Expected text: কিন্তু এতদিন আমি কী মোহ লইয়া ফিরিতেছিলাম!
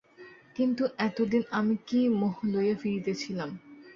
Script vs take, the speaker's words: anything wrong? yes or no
no